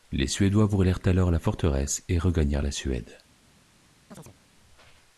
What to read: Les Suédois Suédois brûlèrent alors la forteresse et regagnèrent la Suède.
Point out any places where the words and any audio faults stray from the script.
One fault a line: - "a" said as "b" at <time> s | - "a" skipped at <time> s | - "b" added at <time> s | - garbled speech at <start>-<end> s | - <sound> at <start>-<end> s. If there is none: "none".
- "Suédois" skipped at 0.7 s
- chirp at 4.1-4.4 s